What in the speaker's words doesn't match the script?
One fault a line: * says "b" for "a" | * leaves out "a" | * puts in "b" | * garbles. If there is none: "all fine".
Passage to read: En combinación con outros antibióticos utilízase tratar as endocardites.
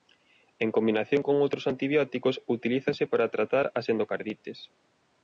* puts in "para"